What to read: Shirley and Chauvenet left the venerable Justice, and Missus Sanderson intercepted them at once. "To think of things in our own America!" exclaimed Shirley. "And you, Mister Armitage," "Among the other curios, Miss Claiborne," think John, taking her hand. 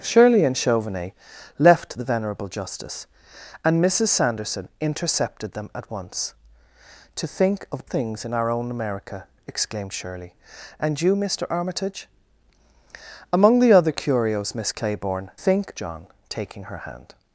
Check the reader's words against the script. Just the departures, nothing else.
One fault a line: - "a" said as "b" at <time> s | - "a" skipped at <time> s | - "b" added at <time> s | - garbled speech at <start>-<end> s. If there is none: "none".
none